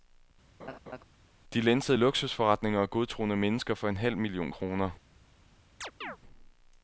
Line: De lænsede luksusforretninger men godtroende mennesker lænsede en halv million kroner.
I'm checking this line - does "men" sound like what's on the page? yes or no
no